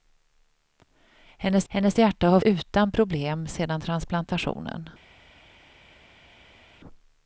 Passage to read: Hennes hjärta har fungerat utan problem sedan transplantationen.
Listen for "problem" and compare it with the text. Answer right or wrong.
right